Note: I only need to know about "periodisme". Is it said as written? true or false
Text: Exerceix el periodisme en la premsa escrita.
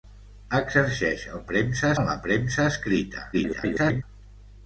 false